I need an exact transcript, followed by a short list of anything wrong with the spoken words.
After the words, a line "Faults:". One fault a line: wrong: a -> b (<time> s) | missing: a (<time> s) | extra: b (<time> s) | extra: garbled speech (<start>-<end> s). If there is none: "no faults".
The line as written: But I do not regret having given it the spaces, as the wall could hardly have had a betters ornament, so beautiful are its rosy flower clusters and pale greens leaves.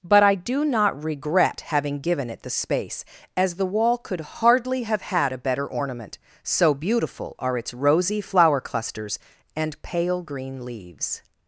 But I do not regret having given it the space, as the wall could hardly have had a better ornament, so beautiful are its rosy flower clusters and pale green leaves.
Faults:
wrong: spaces -> space (2.5 s)
wrong: betters -> better (5.4 s)
wrong: greens -> green (10.2 s)